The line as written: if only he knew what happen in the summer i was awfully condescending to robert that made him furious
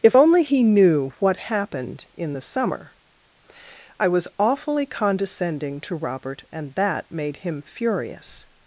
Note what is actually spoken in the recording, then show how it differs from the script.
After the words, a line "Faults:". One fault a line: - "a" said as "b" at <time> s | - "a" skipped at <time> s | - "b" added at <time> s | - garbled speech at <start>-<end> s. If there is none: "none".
if only he knew what happened in the summer i was awfully condescending to robert and that made him furious
Faults:
- "happen" said as "happened" at 1.4 s
- "and" added at 6.5 s